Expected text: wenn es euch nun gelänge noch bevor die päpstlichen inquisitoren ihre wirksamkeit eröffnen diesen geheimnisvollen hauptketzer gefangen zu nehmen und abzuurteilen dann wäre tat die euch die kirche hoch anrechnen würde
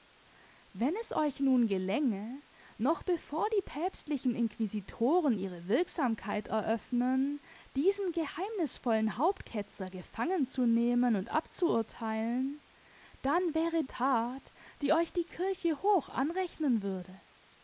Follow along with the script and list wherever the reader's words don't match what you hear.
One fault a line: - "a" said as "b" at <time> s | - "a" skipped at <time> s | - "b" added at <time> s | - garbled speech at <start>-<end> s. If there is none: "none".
none